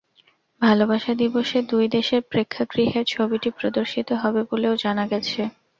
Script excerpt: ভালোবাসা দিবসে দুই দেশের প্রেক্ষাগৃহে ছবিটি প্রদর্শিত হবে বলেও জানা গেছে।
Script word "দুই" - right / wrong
right